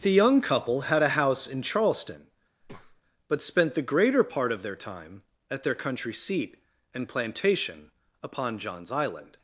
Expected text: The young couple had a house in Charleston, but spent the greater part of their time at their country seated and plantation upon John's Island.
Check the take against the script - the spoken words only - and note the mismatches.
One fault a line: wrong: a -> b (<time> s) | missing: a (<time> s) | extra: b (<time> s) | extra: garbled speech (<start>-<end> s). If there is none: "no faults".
wrong: seated -> seat (6.1 s)